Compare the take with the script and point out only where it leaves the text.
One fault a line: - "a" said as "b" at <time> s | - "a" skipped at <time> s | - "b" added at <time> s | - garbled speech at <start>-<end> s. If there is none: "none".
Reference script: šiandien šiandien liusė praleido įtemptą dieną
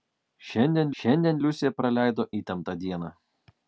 none